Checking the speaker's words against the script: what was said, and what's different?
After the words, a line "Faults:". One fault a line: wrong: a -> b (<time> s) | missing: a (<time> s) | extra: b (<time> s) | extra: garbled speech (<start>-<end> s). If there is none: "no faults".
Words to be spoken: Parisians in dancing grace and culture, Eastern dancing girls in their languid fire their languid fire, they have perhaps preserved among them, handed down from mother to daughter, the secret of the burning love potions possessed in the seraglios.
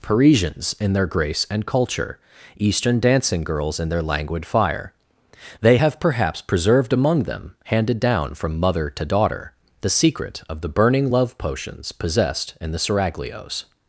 Parisians in their grace and culture, Eastern dancing girls in their languid fire, they have perhaps preserved among them, handed down from mother to daughter, the secret of the burning love potions possessed in the seraglios.
Faults:
wrong: dancing -> their (0.9 s)
missing: their languid fire (4.9 s)